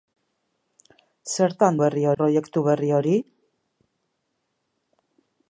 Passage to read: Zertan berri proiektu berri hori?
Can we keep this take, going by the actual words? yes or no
yes